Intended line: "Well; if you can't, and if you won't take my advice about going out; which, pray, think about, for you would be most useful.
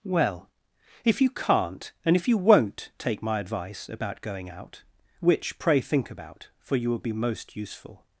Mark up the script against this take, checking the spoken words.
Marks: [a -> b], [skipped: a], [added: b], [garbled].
"Well; if you can't, and if you won't take my advice about going out; which, pray, think about, for you [would -> will] be most useful.